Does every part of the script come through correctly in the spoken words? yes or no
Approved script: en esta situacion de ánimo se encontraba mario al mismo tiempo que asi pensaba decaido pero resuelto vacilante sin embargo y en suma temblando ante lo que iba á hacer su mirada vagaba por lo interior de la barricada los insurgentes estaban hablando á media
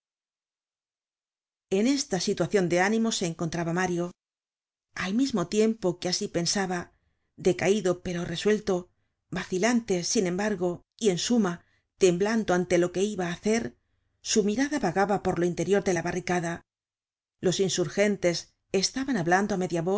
yes